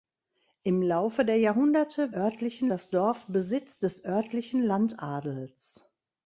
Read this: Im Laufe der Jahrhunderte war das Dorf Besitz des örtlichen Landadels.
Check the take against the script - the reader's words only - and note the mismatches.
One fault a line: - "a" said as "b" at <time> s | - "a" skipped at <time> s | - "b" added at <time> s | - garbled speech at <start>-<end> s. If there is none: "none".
- "war" said as "örtlichen" at 2.1 s